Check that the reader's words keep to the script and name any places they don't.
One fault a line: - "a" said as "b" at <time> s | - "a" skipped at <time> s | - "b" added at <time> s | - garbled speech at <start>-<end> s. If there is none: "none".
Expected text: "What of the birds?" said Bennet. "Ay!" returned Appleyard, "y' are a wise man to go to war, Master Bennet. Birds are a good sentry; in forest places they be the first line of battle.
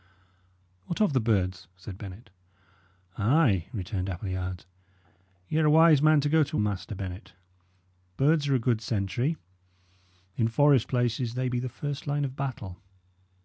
- "war" skipped at 6.6 s